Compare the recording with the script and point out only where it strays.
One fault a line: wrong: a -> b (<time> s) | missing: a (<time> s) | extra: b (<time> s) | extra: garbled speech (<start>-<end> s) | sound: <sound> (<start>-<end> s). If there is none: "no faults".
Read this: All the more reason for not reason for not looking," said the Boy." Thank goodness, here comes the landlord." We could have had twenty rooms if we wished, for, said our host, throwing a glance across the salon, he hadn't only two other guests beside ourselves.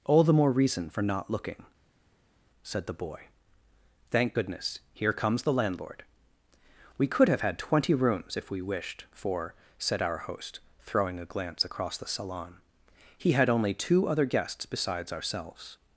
missing: reason for not (1.3 s)
wrong: hadn't -> had (13.3 s)
wrong: beside -> besides (14.6 s)